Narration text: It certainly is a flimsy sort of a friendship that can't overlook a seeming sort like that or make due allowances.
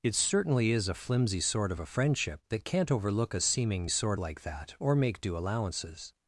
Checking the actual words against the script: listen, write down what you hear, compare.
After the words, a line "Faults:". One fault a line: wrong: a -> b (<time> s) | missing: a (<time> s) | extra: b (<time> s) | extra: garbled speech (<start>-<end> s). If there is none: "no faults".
It certainly is a flimsy sort of a friendship that can't overlook a seeming sort like that or make due allowances.
Faults:
no faults